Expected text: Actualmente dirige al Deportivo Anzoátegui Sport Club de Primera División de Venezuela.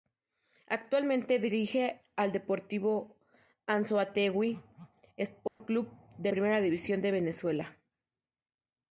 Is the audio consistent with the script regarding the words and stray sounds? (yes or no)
no